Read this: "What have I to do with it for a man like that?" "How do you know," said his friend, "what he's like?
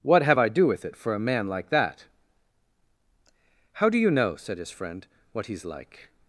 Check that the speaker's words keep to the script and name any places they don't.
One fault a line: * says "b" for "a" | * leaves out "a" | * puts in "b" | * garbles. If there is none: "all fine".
* leaves out "to"